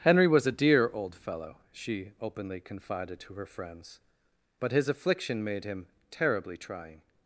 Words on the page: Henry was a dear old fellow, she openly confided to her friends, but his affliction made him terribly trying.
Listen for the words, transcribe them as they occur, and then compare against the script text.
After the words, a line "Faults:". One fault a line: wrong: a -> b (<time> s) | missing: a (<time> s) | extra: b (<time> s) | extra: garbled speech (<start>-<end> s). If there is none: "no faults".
Henry was a dear old fellow, she openly confided to her friends, but his affliction made him terribly trying.
Faults:
no faults